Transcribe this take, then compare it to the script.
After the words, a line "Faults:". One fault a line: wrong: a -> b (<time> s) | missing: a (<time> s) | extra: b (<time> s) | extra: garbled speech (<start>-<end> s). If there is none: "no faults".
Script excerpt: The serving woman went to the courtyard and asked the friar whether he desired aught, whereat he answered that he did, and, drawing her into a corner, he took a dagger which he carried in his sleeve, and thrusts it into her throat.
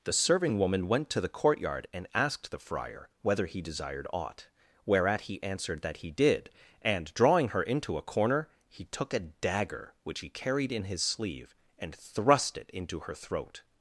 The serving woman went to the courtyard and asked the friar whether he desired aught, whereat he answered that he did, and, drawing her into a corner, he took a dagger which he carried in his sleeve, and thrust it into her throat.
Faults:
wrong: thrusts -> thrust (11.9 s)